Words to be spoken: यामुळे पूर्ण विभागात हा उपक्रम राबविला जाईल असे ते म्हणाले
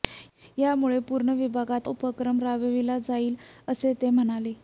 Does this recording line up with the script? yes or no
no